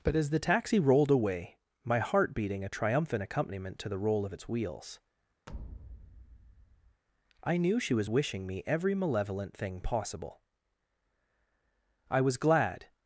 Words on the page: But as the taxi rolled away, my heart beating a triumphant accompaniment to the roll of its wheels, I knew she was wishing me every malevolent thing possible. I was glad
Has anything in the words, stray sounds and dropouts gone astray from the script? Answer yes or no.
yes